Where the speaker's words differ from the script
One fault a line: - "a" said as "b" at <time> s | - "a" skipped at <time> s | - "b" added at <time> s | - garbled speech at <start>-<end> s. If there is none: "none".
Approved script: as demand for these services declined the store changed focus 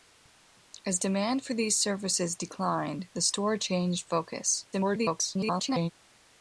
- garbled speech at 4.7-5.9 s